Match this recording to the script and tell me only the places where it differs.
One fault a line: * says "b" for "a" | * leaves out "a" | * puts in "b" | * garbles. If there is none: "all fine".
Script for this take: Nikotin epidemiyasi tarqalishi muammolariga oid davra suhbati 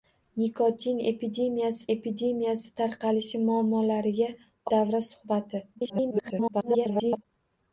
* puts in "epidemiyasi"
* leaves out "oid"
* garbles